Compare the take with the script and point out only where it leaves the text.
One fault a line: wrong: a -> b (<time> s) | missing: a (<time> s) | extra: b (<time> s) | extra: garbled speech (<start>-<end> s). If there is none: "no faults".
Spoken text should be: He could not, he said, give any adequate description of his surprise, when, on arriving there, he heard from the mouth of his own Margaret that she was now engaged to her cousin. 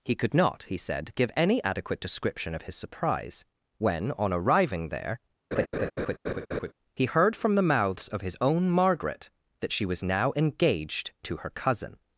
wrong: mouth -> mouths (7.6 s)